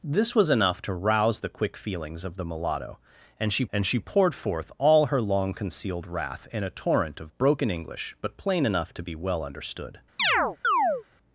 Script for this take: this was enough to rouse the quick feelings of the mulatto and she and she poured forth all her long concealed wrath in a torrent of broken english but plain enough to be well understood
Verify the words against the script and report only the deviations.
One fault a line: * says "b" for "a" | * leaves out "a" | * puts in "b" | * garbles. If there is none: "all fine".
all fine